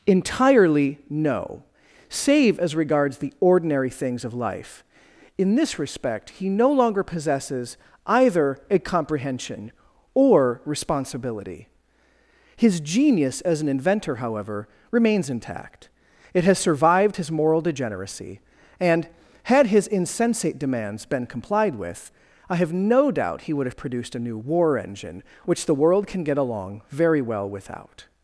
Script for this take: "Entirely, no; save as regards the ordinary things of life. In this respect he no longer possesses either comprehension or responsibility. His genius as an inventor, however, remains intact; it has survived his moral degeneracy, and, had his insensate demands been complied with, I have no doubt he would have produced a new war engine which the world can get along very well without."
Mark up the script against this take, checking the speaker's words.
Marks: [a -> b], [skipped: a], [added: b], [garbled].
"Entirely, no; save as regards the ordinary things of life. In this respect he no longer possesses either [added: a] comprehension or responsibility. His genius as an inventor, however, remains intact; it has survived his moral degeneracy, and, had his insensate demands been complied with, I have no doubt he would have produced a new war engine which the world can get along very well without."